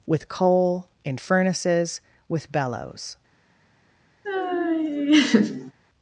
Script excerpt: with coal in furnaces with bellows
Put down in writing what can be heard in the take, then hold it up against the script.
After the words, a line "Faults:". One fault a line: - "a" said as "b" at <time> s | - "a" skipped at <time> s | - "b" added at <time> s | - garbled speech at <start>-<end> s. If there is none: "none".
with coal in furnaces with bellows
Faults:
none